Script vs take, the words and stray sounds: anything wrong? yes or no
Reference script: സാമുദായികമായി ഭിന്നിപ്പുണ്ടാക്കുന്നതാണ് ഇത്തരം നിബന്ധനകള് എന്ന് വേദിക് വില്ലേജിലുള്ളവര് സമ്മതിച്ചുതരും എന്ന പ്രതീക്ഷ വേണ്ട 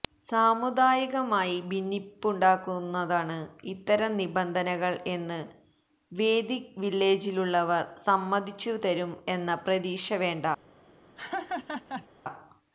yes